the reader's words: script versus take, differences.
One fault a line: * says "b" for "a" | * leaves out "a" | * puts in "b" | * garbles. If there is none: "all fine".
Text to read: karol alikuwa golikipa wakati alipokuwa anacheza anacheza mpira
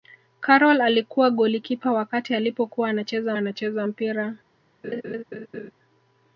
all fine